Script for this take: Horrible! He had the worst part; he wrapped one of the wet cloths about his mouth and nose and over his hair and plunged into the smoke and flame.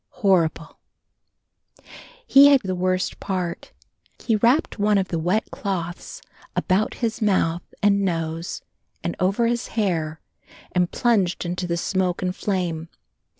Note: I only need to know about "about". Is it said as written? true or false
true